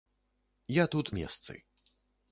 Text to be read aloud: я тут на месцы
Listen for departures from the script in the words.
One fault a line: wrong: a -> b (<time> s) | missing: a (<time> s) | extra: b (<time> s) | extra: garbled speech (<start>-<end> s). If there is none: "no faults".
missing: на (1.1 s)